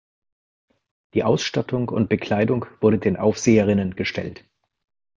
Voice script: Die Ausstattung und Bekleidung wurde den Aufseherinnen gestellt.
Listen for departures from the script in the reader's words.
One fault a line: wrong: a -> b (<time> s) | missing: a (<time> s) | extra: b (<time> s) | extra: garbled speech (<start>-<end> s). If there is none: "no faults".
no faults